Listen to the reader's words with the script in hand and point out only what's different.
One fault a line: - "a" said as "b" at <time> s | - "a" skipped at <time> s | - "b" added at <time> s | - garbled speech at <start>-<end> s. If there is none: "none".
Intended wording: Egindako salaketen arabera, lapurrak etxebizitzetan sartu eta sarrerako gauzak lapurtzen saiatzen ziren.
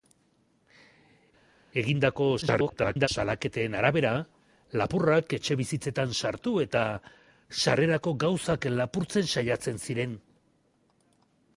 - garbled speech at 2.4-3.1 s